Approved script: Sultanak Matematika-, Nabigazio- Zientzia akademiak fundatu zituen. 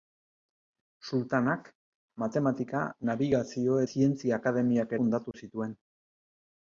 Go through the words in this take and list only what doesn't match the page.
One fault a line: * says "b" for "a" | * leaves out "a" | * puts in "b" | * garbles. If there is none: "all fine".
all fine